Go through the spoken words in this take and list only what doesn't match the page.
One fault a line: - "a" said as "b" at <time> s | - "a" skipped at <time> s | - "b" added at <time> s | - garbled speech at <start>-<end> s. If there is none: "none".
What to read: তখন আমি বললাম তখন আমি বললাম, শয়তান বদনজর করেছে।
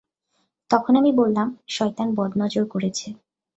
- "তখন আমি বললাম" skipped at 1.5 s